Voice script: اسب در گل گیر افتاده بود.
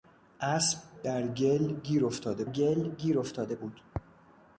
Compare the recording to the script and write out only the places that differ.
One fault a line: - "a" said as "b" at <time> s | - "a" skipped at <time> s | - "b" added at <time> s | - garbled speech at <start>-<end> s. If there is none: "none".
- "گل گیر افتاده" added at 2.5 s